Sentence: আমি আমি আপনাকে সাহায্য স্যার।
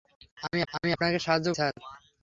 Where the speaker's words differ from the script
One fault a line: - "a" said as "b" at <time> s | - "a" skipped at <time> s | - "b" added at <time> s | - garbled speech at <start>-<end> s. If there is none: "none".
none